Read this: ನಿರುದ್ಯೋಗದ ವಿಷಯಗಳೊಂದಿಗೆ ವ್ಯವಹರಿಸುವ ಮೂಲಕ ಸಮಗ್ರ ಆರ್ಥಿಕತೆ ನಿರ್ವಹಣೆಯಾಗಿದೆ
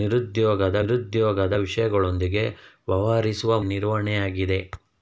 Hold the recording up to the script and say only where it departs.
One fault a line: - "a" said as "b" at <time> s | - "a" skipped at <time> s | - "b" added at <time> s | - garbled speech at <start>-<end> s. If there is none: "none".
- "ನಿರುದ್ಯೋಗದ" added at 0.8 s
- "ಮೂಲಕ ಸಮಗ್ರ ಆರ್ಥಿಕತೆ" skipped at 3.6 s